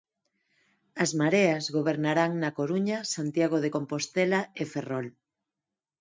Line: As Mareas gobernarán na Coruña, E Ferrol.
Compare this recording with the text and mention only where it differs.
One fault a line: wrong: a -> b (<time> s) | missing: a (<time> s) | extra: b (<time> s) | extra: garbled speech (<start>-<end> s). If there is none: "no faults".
extra: Santiago de Compostela (3.1 s)